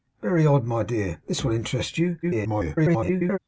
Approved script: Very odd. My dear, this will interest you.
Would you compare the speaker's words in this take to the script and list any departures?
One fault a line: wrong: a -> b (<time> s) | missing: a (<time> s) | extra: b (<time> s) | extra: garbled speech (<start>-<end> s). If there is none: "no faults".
extra: garbled speech (2.2-3.4 s)